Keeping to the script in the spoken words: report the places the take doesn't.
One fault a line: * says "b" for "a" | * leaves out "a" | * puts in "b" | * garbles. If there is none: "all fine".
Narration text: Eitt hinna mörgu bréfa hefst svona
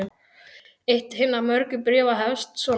all fine